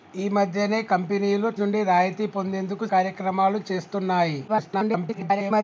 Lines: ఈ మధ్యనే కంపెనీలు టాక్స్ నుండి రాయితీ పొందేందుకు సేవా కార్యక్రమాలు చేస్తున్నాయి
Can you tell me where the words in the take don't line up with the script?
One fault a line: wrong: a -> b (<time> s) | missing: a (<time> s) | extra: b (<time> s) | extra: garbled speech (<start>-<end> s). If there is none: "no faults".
missing: టాక్స్ (1.5 s)
missing: సేవా (2.9 s)
extra: garbled speech (4.5-5.6 s)